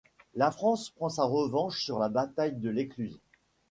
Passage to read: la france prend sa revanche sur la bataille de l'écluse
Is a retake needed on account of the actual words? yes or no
no